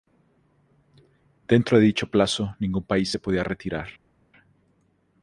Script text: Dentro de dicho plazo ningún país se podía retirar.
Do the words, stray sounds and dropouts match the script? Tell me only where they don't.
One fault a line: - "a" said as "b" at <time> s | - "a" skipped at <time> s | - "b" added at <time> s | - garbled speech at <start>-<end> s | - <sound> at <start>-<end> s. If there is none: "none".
none